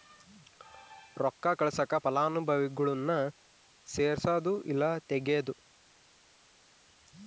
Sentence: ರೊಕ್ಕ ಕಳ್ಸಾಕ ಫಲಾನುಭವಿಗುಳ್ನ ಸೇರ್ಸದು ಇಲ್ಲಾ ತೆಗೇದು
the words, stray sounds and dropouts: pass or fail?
pass